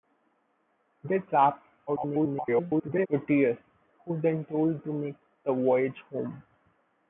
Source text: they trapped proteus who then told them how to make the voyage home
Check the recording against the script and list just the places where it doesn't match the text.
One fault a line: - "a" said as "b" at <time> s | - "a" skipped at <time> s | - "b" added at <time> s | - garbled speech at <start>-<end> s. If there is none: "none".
- garbled speech at 1.9-3.1 s
- "them how" skipped at 4.8 s